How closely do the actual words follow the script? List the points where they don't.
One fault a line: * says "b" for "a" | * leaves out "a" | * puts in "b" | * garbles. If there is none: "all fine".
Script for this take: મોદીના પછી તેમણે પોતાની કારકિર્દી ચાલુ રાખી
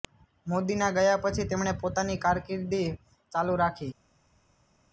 * puts in "ગયા"